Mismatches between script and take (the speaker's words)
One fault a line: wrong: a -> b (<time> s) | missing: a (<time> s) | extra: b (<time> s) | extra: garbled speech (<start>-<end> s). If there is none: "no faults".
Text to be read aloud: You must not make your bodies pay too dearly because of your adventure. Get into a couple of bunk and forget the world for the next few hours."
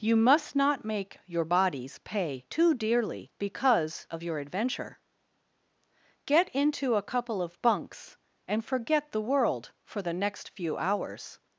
wrong: bunk -> bunks (7.6 s)